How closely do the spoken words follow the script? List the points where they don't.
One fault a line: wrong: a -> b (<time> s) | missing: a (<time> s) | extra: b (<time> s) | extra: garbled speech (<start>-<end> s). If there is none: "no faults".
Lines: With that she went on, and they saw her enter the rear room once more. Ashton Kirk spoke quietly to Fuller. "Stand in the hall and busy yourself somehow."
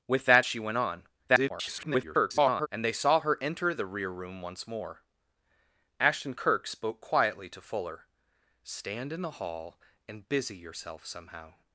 extra: garbled speech (1.3-2.7 s)